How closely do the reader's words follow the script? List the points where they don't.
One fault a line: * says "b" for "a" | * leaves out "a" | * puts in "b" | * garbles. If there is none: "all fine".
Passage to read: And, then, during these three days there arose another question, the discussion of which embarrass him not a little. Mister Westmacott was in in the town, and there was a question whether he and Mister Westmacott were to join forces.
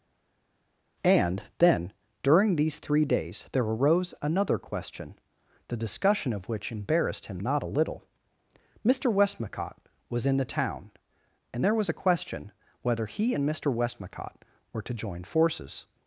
* says "embarrassed" for "embarrass"
* leaves out "in"